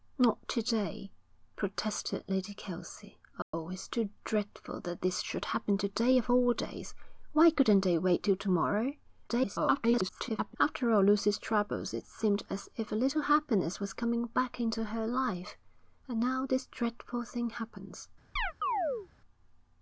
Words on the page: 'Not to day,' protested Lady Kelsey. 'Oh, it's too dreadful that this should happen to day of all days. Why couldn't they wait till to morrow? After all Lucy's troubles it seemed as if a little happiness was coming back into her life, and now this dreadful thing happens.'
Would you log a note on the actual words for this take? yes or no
yes